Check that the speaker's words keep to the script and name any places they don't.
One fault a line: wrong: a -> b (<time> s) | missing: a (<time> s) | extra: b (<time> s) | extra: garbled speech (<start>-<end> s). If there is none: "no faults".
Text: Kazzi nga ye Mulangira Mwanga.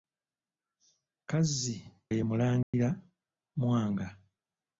missing: nga (1.8 s)